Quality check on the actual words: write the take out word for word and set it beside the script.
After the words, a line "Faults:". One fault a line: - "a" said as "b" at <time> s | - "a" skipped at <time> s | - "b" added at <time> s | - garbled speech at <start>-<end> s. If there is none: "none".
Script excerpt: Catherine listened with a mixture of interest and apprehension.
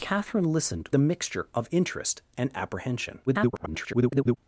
Catherine listened a mixture of interest and apprehension. [garbled]
Faults:
- "with" skipped at 0.9 s
- garbled speech at 3.3-4.4 s